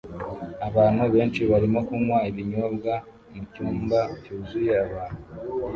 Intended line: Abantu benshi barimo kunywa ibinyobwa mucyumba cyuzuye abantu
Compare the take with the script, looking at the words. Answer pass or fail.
pass